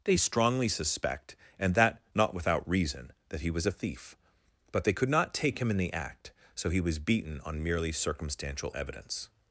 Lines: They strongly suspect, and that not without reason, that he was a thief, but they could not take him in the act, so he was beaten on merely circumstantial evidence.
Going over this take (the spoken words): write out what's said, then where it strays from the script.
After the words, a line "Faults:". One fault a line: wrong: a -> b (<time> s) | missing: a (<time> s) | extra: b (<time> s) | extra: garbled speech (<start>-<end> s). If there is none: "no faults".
They strongly suspect, and that not without reason, that he was a thief, but they could not take him in the act, so he was beaten on merely circumstantial evidence.
Faults:
no faults